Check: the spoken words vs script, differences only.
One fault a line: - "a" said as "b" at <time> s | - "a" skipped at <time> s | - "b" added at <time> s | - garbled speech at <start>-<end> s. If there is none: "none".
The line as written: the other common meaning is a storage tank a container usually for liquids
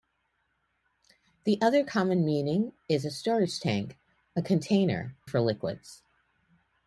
- "usually" skipped at 5.2 s